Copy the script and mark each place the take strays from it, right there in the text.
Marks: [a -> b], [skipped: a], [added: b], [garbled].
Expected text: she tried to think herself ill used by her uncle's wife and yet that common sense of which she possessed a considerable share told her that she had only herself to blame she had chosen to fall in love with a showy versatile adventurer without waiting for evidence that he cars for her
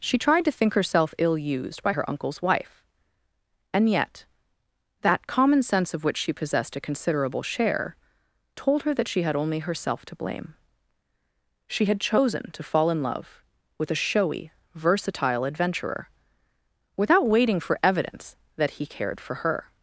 she tried to think herself ill used by her uncle's wife and yet that common sense of which she possessed a considerable share told her that she had only herself to blame she had chosen to fall in love with a showy versatile adventurer without waiting for evidence that he [cars -> cared] for her